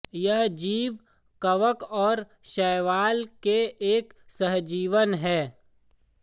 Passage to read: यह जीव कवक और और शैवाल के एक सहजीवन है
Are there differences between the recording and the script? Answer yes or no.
yes